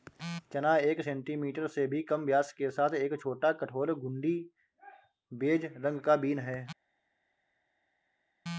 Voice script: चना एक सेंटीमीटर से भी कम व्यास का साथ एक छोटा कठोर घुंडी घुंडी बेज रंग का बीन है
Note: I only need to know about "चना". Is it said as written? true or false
true